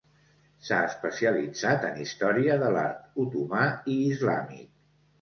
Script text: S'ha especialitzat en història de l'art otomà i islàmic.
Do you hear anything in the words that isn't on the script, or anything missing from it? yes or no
no